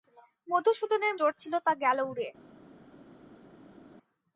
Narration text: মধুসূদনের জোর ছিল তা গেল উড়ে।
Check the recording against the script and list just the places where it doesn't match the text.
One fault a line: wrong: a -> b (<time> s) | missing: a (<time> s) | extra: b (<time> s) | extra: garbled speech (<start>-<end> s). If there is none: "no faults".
no faults